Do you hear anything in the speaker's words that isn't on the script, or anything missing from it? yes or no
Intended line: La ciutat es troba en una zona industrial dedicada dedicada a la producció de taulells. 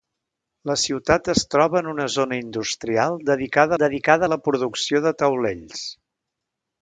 no